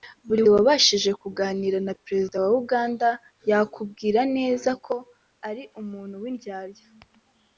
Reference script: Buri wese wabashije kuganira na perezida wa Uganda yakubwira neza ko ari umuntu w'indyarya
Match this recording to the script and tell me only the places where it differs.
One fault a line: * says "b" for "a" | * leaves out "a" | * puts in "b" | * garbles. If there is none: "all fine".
* leaves out "wese"